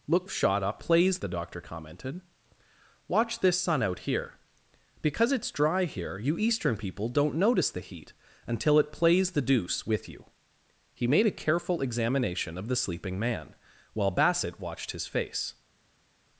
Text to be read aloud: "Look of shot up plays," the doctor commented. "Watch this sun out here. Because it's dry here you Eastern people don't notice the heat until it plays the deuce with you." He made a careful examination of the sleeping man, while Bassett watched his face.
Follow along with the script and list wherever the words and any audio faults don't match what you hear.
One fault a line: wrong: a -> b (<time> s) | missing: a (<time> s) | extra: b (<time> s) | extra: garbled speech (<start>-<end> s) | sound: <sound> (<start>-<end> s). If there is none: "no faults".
no faults